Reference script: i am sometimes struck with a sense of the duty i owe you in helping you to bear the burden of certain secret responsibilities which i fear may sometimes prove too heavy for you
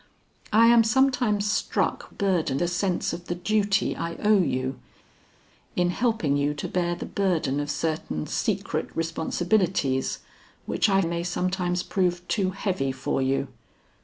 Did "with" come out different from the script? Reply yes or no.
yes